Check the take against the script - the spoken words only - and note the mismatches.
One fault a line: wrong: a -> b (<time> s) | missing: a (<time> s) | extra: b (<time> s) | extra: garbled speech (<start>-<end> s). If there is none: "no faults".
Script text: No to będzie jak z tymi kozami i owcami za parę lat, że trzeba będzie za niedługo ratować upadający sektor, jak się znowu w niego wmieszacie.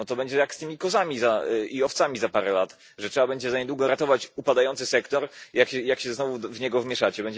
no faults